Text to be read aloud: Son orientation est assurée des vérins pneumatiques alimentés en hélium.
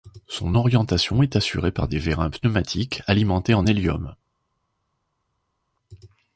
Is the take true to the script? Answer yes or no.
no